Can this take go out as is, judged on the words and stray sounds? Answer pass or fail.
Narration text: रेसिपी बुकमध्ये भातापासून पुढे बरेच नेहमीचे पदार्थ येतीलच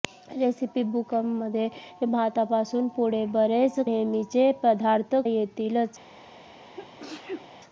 fail